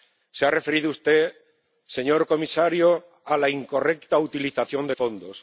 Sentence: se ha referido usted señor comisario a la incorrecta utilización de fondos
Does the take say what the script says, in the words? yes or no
yes